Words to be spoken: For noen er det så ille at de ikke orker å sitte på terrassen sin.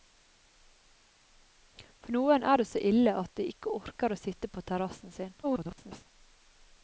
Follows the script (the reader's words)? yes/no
no